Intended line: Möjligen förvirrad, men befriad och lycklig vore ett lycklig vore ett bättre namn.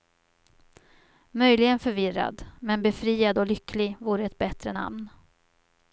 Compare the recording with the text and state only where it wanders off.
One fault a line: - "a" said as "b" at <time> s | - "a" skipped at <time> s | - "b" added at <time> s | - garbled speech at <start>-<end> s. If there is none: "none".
- "lycklig vore ett" skipped at 4.4 s